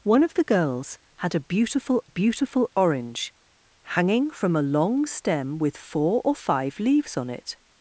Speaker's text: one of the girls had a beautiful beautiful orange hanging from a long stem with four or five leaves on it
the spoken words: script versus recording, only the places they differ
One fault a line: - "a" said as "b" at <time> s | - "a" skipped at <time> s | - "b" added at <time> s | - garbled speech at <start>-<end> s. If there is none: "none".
none